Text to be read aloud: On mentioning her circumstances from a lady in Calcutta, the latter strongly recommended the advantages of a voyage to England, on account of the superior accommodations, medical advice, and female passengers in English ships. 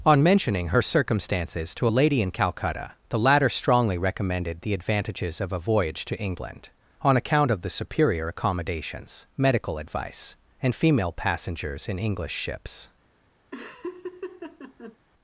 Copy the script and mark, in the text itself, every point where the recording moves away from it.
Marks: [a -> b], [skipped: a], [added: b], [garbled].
On mentioning her circumstances [from -> to] a lady in Calcutta, the latter strongly recommended the advantages of a voyage to England, on account of the superior accommodations, medical advice, and female passengers in English ships.